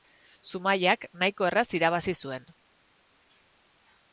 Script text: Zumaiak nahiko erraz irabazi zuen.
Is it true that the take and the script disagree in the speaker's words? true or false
false